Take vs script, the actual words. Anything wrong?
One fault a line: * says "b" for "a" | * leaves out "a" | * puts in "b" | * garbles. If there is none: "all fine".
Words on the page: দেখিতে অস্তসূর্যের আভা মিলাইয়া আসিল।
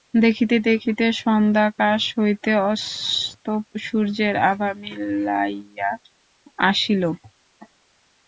* puts in "দেখিতে সন্ধ্যাকাশ হইতে"